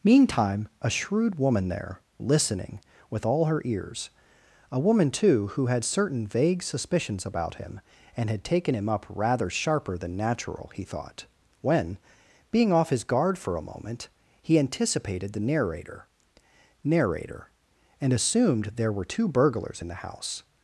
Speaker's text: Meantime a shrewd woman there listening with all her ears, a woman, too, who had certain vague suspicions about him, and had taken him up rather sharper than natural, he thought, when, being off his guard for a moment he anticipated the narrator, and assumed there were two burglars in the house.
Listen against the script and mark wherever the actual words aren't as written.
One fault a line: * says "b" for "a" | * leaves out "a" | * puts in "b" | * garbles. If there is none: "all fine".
* puts in "narrator"